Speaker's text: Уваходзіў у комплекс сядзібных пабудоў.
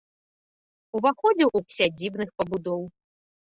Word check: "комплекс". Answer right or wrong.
wrong